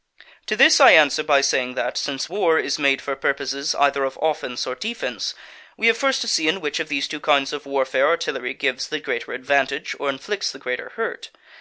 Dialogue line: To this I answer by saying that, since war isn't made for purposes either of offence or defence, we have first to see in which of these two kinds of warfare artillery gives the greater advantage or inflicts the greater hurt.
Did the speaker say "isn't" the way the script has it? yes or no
no